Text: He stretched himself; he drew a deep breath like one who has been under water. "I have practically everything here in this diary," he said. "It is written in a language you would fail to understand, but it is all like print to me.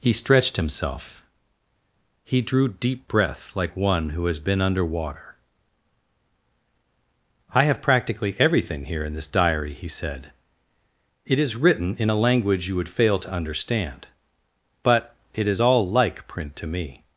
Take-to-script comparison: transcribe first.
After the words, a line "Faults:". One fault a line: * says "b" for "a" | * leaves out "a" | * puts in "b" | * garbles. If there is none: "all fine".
He stretched himself; he drew deep breath like one who has been under water. "I have practically everything here in this diary," he said. "It is written in a language you would fail to understand, but it is all like print to me.
Faults:
* leaves out "a"